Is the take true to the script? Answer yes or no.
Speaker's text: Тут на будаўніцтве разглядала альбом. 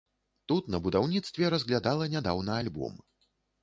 no